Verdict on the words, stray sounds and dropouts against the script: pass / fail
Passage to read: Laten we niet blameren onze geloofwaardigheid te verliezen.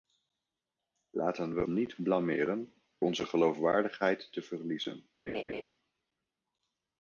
fail